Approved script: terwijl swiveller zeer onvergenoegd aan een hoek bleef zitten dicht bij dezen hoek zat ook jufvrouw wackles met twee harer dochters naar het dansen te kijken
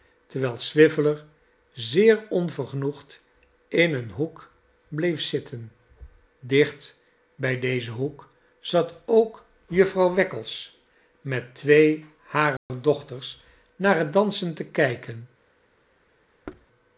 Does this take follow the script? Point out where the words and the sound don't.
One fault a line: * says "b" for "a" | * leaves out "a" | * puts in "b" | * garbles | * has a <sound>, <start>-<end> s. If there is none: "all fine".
* says "in" for "aan"
* has a dropout, 12.6-12.7 s
* has a thud, 16.5-16.7 s